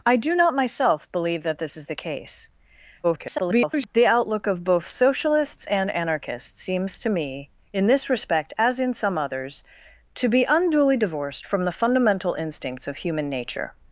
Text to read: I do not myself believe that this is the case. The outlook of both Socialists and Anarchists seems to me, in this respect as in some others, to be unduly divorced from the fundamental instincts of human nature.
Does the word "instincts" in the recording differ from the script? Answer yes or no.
no